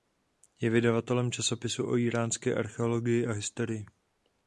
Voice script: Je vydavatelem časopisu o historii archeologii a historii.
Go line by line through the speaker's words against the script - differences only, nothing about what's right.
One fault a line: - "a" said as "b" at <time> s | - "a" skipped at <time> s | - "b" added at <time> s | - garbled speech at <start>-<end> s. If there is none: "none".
- "historii" said as "íránské" at 2.0 s